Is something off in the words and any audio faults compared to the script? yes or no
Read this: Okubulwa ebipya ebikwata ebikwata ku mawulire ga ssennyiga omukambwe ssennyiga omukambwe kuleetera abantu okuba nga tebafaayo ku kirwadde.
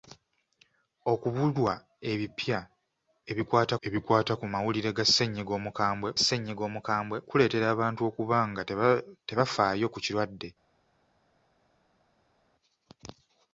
no